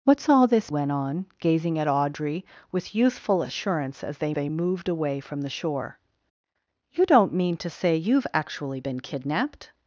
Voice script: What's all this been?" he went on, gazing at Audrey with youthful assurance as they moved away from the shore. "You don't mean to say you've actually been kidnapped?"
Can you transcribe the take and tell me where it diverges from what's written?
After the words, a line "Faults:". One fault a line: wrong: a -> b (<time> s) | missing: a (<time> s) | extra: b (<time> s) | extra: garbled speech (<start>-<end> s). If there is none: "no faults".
What's all this went on, gazing at Audrey with youthful assurance as they they moved away from the shore. "You don't mean to say you've actually been kidnapped?"
Faults:
missing: been he (0.7 s)
extra: they (4.3 s)